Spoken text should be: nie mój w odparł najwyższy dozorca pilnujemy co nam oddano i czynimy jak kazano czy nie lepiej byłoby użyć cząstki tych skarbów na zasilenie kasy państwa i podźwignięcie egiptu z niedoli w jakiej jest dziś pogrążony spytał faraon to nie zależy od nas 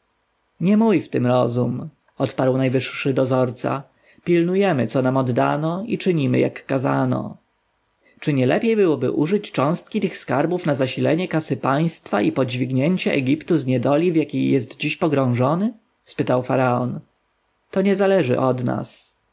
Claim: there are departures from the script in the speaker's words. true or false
true